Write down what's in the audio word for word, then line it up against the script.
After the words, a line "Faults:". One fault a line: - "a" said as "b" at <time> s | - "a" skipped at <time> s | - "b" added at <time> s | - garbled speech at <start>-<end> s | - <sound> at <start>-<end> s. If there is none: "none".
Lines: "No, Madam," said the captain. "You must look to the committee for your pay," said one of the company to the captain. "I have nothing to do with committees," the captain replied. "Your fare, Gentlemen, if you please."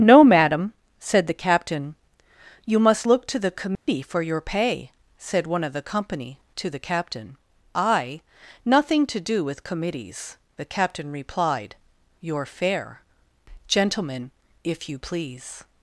"No, Madam," said the captain. "You must look to the committee for your pay," said one of the company to the captain. "I nothing to do with committees," the captain replied. "Your fare, Gentlemen, if you please."
Faults:
- dropout at 3.8-3.9 s
- "have" skipped at 8.2 s